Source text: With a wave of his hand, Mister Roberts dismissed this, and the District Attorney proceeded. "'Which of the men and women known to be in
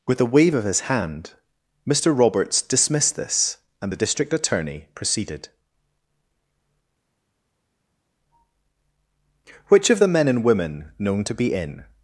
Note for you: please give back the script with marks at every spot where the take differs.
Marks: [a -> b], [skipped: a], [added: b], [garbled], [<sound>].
With a wave of his hand, Mister Roberts dismissed this, and the District Attorney proceeded. "'Which of the men and women known to be in